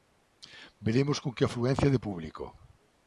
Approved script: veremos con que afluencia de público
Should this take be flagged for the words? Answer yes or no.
no